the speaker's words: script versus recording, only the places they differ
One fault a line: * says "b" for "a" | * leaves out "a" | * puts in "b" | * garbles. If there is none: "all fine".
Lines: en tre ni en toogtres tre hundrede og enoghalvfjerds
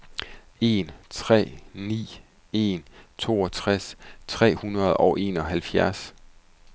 all fine